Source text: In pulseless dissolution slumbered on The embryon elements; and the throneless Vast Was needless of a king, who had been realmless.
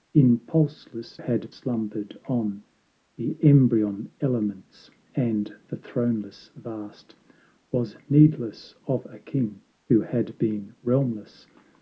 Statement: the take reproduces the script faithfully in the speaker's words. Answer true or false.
false